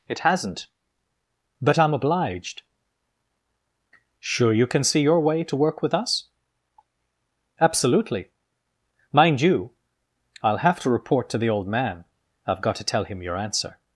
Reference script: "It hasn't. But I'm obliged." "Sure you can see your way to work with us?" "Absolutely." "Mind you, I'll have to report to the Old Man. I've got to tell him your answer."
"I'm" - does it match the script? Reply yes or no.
yes